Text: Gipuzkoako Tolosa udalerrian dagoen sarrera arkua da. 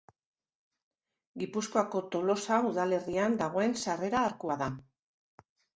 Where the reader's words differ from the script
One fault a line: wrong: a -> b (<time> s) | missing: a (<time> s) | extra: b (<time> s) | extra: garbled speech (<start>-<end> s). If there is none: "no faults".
no faults